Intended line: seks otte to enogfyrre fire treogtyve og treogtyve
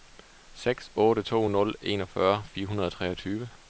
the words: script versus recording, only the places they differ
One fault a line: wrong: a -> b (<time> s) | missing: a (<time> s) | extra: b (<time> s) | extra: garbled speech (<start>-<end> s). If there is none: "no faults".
extra: nul (1.5 s)
wrong: treogtyve -> hundrede (2.7 s)